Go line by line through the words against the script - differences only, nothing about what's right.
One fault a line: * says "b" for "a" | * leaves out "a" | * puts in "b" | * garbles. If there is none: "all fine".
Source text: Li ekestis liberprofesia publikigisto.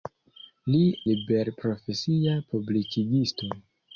* leaves out "ekestis"